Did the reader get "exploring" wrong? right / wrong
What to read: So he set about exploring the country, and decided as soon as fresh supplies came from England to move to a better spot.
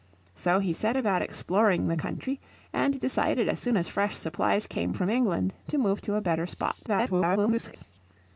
right